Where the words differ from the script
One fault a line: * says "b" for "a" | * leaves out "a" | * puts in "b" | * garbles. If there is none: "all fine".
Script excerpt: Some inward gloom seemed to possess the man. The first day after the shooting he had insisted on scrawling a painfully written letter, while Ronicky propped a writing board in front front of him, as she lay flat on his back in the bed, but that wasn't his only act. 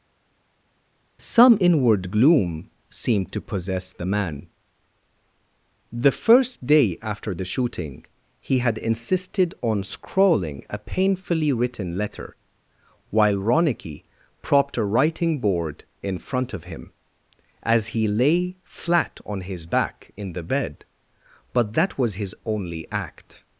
* leaves out "front"
* says "he" for "she"
* says "was" for "wasn't"